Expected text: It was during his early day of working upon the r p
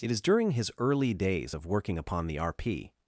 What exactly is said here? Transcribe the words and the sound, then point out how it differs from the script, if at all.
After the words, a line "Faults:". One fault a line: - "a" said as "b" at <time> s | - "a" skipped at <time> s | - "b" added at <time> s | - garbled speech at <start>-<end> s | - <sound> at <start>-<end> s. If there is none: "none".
It is during his early days of working upon the r p
Faults:
- "was" said as "is" at 0.1 s
- "day" said as "days" at 1.1 s